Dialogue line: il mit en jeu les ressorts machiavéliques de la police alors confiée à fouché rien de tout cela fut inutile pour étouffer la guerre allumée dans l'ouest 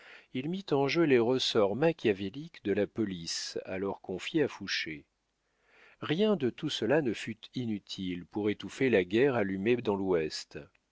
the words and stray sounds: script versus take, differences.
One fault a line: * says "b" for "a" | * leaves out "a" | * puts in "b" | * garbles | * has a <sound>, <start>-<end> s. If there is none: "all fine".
* puts in "ne"